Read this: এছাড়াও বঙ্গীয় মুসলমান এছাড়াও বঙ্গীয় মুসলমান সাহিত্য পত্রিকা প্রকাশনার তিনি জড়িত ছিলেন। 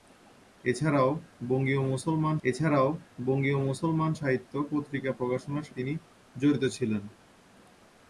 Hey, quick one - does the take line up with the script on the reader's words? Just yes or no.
yes